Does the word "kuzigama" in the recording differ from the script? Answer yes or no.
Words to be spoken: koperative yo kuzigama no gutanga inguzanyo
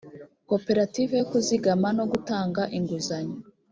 no